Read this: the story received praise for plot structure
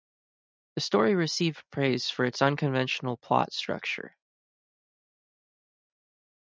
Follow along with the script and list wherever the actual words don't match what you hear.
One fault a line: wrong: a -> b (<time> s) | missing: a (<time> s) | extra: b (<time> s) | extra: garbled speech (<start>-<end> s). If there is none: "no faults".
extra: its unconventional (2.2 s)